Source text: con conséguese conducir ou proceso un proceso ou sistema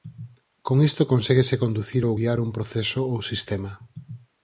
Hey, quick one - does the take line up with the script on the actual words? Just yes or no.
no